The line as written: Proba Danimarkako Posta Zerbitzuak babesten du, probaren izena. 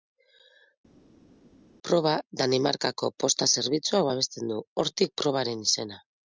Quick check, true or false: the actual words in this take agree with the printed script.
false